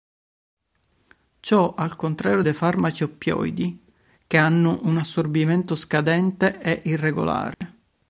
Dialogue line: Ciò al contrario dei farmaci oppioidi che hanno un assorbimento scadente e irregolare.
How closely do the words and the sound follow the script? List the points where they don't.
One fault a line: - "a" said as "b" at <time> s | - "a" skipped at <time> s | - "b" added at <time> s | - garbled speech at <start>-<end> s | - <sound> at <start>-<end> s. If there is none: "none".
- dropout at 7.5-7.6 s